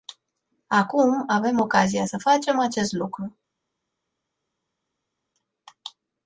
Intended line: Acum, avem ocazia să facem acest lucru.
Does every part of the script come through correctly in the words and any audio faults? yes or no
yes